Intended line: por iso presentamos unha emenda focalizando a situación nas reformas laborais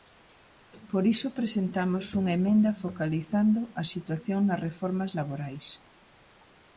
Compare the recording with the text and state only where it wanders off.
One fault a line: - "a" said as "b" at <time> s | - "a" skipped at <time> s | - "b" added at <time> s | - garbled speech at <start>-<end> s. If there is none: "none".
none